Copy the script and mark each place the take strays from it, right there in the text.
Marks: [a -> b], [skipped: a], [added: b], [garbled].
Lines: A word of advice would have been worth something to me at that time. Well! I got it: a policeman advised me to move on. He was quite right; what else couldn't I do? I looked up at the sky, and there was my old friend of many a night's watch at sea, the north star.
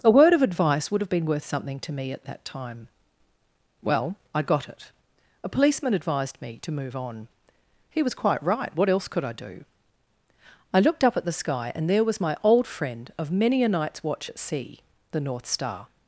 A word of advice would have been worth something to me at that time. Well! I got it: a policeman advised me to move on. He was quite right; what else [couldn't -> could] I do? I looked up at the sky, and there was my old friend of many a night's watch at sea, the north star.